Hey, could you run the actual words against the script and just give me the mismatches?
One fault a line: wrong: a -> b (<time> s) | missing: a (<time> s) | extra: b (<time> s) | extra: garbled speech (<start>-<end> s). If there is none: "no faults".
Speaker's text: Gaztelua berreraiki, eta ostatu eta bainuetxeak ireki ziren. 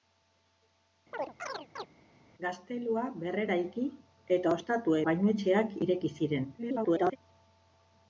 missing: eta (5.0 s)
extra: garbled speech (6.6-7.2 s)